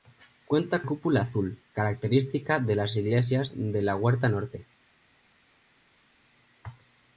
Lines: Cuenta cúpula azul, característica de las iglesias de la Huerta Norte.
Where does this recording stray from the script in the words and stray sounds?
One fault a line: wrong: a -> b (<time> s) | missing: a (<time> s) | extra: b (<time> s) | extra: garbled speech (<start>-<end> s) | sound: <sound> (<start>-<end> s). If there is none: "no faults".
no faults